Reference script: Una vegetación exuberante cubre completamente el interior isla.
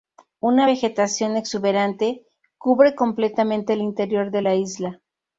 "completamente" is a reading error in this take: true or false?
false